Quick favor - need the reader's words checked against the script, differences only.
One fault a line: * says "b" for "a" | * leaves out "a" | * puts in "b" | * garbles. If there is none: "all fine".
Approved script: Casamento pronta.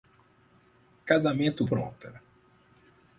all fine